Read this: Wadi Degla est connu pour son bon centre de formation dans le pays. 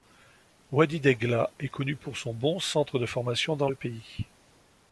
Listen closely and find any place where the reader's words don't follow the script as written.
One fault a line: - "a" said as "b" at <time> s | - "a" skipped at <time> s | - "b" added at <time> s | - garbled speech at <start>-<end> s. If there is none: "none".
none